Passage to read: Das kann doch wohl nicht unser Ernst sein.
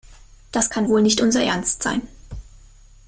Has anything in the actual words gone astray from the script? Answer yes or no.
yes